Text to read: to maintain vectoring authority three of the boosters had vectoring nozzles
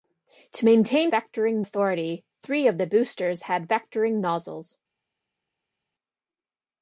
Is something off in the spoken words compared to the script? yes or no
no